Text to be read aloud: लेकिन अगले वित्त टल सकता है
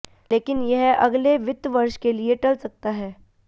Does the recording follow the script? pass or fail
fail